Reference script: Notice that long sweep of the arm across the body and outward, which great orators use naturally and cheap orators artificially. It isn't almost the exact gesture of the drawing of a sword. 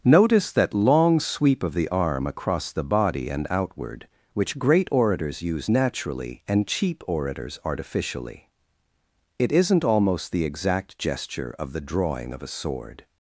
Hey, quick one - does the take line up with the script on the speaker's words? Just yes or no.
yes